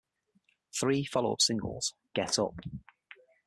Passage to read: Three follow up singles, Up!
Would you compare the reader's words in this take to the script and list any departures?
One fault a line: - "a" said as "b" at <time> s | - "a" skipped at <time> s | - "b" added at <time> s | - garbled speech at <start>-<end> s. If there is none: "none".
- "Get" added at 2.1 s